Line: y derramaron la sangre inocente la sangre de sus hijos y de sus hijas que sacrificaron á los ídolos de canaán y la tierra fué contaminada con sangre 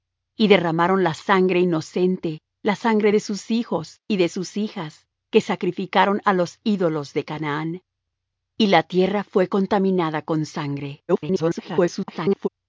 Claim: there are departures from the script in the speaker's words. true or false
true